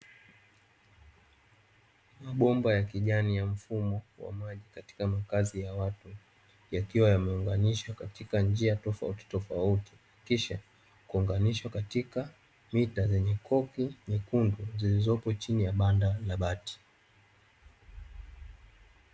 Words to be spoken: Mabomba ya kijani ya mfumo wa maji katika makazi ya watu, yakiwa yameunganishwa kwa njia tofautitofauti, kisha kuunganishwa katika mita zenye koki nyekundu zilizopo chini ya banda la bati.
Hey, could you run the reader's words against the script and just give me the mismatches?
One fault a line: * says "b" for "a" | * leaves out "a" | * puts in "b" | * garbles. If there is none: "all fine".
* says "katika" for "kwa"